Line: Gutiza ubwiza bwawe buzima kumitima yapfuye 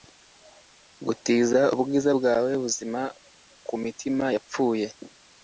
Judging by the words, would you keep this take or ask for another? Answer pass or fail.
pass